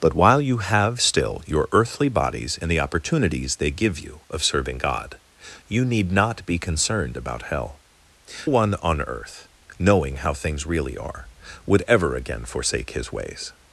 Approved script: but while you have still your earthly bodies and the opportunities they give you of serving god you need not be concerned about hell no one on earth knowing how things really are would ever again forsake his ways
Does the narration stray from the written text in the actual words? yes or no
yes